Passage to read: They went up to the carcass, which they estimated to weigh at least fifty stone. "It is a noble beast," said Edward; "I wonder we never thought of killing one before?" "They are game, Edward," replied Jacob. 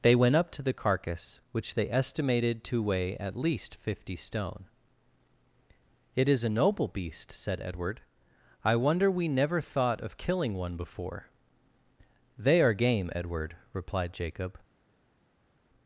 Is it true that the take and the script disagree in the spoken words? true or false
false